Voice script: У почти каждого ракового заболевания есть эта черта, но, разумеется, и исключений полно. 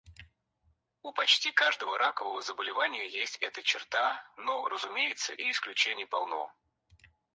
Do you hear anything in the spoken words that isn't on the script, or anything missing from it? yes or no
no